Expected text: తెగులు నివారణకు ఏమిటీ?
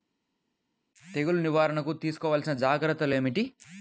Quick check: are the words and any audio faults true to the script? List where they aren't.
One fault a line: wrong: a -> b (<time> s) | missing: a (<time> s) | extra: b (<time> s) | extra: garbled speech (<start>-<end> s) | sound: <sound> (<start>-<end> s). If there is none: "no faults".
extra: తీసుకోవలసిన జాగ్రత్తలు (1.9 s)